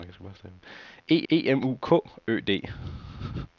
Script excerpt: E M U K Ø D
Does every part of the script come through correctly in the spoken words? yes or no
no